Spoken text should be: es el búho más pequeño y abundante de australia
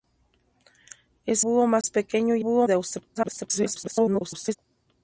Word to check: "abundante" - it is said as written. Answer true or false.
false